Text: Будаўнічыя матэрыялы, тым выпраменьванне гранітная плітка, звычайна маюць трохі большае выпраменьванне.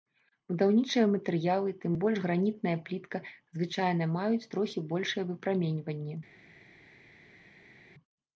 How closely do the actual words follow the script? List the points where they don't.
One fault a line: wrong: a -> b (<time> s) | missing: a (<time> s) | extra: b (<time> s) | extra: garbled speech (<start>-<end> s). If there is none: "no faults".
wrong: выпраменьванне -> больш (2.0 s)